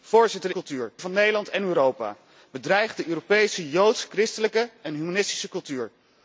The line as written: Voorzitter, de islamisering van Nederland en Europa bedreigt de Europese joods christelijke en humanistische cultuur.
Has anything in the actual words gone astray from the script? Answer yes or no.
yes